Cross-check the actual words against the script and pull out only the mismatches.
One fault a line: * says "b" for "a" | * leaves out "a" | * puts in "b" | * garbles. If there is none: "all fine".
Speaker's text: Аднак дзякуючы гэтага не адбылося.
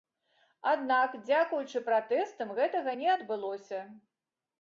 * puts in "пратэстам"